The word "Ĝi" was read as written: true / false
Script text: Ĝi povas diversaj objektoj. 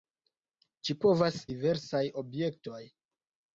true